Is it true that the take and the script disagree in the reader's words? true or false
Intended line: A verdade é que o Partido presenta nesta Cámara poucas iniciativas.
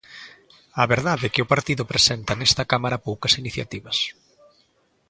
false